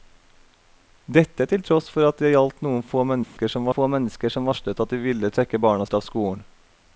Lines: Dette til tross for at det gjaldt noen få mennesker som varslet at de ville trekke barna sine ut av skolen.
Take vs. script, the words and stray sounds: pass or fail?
fail